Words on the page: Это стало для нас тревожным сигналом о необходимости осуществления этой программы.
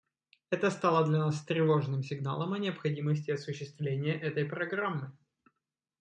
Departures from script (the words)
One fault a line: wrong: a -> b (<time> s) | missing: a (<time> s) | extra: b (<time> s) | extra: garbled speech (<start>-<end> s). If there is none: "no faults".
no faults